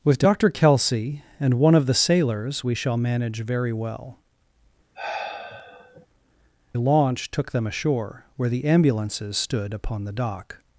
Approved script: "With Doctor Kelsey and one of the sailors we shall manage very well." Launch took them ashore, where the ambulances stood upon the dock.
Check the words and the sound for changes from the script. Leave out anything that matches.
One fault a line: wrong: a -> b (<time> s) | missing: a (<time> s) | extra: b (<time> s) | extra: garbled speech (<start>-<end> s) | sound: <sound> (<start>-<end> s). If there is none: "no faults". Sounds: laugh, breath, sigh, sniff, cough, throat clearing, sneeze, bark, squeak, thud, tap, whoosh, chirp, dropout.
sound: sigh (4.9-6.1 s)